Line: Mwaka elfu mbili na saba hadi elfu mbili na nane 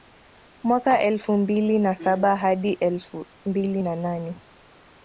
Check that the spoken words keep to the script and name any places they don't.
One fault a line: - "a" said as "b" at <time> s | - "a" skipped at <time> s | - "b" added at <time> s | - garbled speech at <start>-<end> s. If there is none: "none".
none